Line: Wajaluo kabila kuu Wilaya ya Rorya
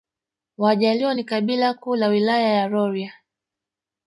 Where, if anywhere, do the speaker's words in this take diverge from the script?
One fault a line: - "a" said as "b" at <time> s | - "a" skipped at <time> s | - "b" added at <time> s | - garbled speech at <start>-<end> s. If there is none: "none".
- "ni" added at 1.1 s
- "la" added at 2.0 s